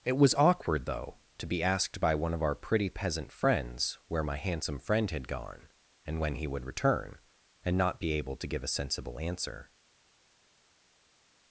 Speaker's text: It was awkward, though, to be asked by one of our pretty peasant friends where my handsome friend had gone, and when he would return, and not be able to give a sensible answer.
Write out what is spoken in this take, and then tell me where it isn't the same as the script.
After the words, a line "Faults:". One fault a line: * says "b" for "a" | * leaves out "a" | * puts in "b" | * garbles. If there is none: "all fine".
It was awkward, though, to be asked by one of our pretty peasant friends where my handsome friend had gone, and when he would return, and not be able to give a sensible answer.
Faults:
all fine